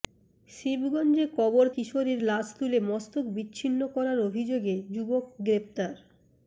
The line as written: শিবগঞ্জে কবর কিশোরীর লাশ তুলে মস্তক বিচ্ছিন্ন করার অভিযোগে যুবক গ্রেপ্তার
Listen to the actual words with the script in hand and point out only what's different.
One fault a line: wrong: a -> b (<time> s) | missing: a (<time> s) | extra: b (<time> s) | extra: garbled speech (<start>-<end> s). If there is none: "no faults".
no faults